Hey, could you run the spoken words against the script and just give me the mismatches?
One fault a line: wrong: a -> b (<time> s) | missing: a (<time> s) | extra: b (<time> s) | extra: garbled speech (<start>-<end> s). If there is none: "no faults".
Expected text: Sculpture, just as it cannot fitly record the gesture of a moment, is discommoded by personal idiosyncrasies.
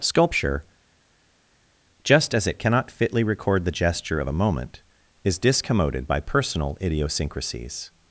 no faults